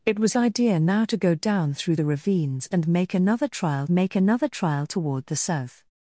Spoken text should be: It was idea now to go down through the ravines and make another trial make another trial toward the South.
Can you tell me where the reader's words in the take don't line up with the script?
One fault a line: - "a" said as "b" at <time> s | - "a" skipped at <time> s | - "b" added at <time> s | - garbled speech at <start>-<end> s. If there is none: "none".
none